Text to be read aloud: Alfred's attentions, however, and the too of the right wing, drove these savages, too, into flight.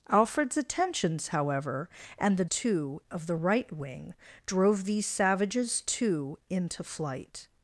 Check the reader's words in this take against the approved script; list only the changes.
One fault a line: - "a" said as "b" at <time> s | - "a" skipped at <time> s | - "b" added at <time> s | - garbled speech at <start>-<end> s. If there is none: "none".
none